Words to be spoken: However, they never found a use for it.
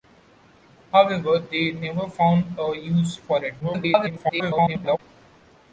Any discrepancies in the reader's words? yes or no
yes